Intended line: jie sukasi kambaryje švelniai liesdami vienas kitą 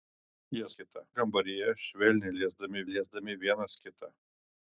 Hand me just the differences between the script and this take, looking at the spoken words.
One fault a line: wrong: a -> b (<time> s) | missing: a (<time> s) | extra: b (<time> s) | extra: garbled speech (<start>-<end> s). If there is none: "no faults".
wrong: sukasi -> kitą (0.8 s)
extra: liesdami (2.9 s)